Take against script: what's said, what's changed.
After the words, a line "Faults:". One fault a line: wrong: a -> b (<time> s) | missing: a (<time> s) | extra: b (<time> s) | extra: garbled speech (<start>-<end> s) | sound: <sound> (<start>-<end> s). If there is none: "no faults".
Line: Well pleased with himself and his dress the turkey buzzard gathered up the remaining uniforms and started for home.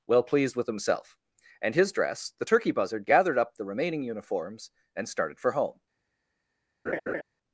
Well pleased with himself and his dress the turkey buzzard gathered up the remaining uniforms and started for home.
Faults:
sound: laugh (6.9-7.2 s)